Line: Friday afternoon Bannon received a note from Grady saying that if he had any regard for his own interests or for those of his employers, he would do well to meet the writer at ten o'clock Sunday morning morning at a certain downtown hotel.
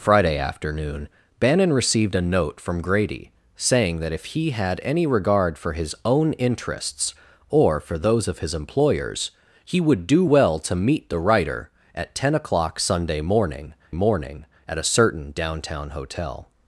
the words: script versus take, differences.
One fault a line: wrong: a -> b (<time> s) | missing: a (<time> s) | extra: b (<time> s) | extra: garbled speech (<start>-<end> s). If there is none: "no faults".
no faults